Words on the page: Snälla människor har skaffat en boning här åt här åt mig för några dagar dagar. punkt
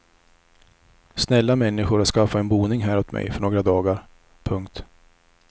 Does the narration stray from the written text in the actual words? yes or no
yes